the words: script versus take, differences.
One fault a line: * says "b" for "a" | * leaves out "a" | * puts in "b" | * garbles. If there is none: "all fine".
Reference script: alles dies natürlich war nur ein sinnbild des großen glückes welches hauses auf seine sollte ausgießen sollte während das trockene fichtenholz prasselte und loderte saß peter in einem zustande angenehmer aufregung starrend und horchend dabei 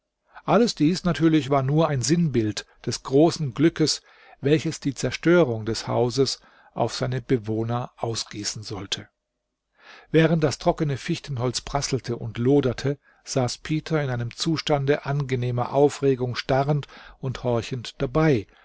* puts in "die zerstörung des"
* says "bewohner" for "sollte"